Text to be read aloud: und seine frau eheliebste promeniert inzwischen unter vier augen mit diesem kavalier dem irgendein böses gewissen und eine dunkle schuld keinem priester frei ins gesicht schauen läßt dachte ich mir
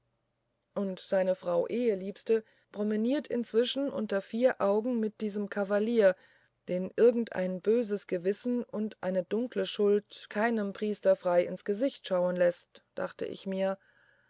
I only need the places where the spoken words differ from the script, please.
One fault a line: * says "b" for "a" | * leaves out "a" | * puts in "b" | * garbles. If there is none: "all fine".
* says "den" for "dem"